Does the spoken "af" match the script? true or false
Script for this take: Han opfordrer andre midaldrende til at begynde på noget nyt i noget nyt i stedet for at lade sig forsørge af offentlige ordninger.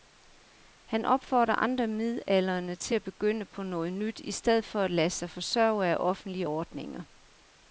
true